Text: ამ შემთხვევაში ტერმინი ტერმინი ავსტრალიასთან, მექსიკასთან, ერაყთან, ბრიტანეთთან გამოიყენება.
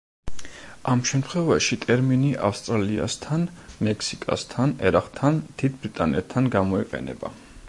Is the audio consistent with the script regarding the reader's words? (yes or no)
no